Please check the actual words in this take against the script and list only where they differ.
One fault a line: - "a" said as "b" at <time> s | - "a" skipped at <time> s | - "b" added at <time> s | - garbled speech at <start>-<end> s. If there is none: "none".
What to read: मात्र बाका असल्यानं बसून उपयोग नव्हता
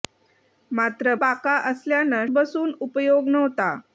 none